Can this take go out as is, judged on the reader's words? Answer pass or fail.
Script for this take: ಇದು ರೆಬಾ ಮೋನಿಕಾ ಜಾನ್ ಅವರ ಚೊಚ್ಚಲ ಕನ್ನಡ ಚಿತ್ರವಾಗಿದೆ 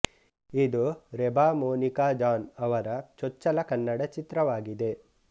pass